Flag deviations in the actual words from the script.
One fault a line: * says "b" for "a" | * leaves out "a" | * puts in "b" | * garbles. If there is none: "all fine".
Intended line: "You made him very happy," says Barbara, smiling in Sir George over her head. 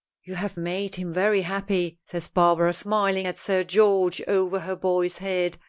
* puts in "have"
* says "at" for "in"
* puts in "boy's"